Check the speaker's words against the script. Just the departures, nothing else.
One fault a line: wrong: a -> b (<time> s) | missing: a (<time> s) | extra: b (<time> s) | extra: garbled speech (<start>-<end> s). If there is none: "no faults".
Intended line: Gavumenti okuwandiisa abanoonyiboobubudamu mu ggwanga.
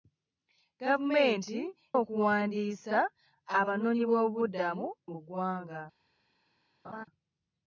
no faults